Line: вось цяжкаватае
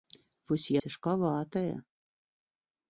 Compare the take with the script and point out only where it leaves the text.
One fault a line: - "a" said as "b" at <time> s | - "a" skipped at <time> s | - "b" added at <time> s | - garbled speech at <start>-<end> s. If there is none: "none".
none